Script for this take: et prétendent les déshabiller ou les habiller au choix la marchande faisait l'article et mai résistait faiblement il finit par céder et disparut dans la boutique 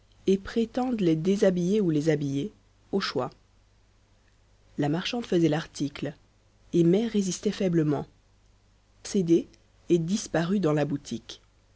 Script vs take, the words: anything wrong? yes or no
yes